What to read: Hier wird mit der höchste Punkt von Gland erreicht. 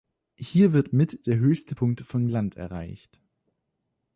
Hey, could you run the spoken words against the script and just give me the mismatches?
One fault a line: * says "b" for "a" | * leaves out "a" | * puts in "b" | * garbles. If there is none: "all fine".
all fine